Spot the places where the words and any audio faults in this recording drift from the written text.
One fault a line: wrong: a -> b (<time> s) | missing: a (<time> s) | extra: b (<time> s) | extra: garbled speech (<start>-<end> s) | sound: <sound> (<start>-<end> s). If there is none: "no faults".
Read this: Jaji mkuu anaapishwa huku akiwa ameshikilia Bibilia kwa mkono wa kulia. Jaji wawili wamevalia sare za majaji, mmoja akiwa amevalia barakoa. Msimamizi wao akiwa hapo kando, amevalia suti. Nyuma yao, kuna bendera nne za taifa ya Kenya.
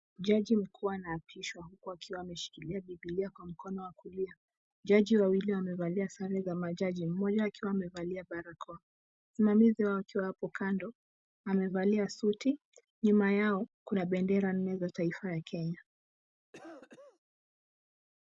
sound: cough (16.5-17.2 s)